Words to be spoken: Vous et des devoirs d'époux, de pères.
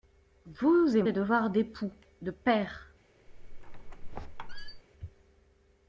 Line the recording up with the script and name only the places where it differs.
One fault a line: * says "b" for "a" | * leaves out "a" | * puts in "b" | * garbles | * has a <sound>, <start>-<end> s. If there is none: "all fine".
* has a squeak, 3.3-4.8 s